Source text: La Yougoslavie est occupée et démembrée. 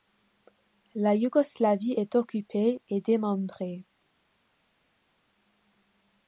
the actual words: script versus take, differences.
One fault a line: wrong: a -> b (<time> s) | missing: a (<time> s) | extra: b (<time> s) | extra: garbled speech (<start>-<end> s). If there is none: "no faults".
no faults